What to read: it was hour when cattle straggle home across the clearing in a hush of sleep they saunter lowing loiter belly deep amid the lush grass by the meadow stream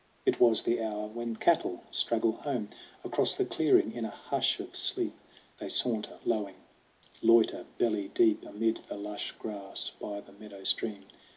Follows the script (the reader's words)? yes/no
no